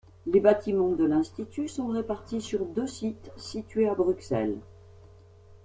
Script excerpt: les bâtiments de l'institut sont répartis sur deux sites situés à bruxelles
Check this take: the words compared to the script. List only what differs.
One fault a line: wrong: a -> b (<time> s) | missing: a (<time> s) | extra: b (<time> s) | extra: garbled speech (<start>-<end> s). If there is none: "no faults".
no faults